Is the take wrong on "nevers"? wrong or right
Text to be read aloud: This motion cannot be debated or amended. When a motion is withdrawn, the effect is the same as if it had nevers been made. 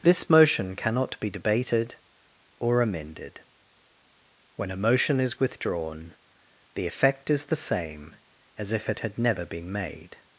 wrong